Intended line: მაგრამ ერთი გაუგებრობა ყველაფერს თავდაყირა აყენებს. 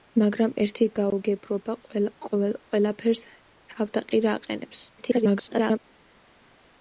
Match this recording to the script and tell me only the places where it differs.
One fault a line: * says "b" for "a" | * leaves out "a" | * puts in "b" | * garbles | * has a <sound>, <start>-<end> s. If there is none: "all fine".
* garbles